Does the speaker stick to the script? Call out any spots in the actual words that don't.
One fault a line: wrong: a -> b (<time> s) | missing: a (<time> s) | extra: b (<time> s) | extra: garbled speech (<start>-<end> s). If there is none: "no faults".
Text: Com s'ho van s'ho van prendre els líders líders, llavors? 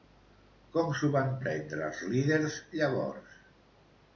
missing: s'ho van (1.3 s)
missing: líders (2.6 s)